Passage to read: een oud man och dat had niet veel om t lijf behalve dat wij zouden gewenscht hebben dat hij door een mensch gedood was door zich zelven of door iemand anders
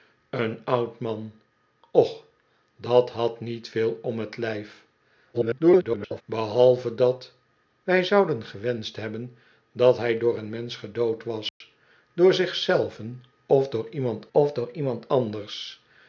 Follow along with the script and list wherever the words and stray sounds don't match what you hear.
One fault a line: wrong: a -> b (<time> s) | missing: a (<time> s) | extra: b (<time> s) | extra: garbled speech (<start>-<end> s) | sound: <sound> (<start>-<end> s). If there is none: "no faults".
extra: garbled speech (5.3-6.2 s)
sound: dropout (11.5-11.6 s)
extra: of door iemand (14.3 s)